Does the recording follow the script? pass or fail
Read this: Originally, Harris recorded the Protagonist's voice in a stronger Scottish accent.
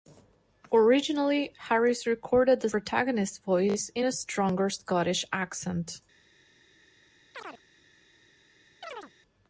pass